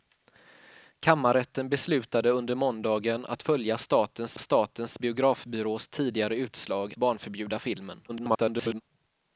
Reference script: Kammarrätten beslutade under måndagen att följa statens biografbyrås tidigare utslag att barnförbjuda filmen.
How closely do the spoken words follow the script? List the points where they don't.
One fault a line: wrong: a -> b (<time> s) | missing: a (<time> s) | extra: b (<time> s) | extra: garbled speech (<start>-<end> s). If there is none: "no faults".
extra: statens (4.4 s)
missing: att (6.9 s)
extra: garbled speech (8.1-8.8 s)